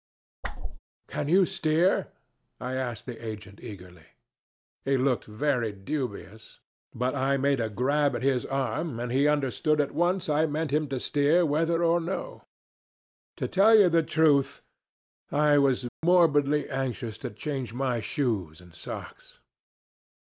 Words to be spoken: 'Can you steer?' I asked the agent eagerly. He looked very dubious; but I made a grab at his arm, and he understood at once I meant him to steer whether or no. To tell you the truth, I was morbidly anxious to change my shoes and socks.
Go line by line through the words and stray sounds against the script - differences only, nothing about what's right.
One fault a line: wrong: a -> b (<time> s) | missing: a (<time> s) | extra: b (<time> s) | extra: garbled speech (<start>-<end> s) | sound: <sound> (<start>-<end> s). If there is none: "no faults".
sound: whoosh (0.4-0.8 s)
sound: dropout (15.9-16.0 s)